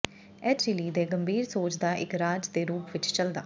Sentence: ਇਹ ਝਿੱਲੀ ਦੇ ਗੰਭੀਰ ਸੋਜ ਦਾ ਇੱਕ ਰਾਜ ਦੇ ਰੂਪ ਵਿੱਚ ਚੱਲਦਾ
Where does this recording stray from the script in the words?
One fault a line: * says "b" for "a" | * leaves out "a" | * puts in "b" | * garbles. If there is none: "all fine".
all fine